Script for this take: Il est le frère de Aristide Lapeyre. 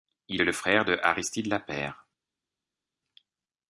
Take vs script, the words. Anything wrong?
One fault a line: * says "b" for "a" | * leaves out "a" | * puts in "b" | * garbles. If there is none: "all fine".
all fine